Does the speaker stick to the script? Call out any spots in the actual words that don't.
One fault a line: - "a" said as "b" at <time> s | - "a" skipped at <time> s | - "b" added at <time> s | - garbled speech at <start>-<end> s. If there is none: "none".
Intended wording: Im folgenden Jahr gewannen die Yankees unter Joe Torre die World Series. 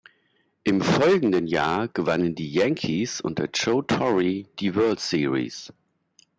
none